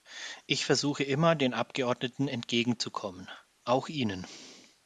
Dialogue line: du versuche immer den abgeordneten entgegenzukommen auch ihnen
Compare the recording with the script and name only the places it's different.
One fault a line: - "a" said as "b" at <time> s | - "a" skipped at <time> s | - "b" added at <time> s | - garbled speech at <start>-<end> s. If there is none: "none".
- "du" said as "ich" at 0.5 s